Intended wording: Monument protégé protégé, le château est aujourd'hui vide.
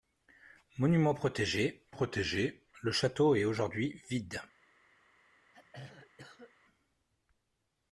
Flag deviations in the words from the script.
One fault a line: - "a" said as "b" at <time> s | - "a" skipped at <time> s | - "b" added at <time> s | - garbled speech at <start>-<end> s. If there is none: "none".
none